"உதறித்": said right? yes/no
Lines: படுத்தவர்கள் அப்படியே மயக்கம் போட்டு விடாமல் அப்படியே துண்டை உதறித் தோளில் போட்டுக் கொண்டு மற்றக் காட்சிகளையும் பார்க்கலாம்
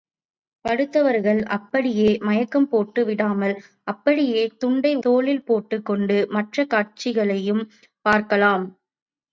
no